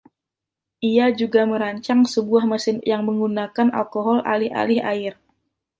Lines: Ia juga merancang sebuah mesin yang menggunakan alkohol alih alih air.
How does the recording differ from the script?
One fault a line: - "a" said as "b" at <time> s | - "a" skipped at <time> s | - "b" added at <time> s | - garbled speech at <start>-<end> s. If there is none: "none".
none